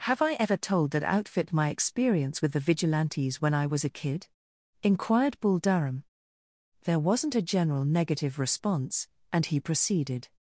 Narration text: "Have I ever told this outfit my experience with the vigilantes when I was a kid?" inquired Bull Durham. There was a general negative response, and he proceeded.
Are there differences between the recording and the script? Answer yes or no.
yes